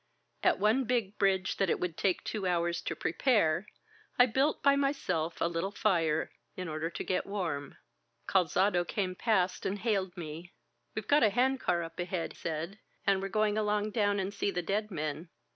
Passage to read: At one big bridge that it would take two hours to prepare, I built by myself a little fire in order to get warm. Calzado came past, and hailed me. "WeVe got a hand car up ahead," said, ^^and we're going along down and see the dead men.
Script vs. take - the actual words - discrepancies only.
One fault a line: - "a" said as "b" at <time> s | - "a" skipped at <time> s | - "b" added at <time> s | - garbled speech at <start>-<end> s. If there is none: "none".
none